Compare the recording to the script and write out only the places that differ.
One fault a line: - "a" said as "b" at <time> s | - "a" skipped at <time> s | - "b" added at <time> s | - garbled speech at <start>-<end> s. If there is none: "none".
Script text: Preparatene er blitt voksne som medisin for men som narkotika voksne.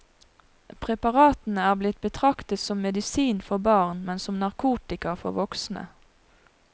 - "voksne" said as "betraktet" at 2.0 s
- "barn" added at 3.7 s
- "for" added at 5.2 s